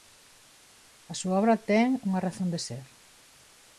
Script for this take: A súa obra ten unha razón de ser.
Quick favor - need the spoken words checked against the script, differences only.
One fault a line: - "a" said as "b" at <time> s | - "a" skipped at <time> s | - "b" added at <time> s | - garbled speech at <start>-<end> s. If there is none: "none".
none